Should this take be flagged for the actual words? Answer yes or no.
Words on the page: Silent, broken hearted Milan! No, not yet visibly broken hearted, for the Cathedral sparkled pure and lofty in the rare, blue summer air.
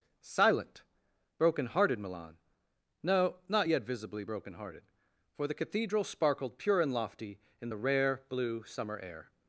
no